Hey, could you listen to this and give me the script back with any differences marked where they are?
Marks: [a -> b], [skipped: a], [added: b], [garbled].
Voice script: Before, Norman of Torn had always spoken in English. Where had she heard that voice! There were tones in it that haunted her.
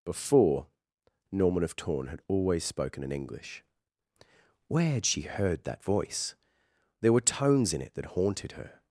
Before, Norman of Torn had always spoken in English. Where had she heard that voice! There were tones in it that haunted her.